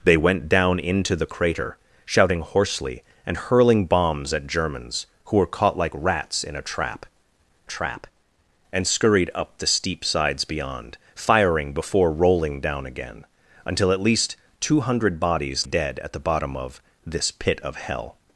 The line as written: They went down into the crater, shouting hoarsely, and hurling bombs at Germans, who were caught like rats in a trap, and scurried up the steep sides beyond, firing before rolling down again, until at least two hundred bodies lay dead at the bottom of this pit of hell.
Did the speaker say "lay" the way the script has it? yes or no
no